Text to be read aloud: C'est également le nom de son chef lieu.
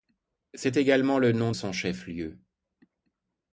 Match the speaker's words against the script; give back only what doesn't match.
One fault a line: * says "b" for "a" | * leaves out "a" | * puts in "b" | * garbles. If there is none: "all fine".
* leaves out "de"